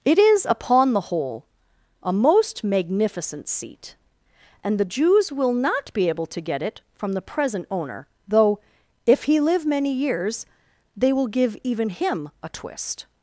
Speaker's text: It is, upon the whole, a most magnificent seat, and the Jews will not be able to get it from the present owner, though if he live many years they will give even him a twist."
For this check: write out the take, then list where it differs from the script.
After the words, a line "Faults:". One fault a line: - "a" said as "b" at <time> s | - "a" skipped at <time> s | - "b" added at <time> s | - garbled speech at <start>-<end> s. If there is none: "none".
It is, upon the whole, a most magnificent seat, and the Jews will not be able to get it from the present owner, though if he live many years they will give even him a twist."
Faults:
none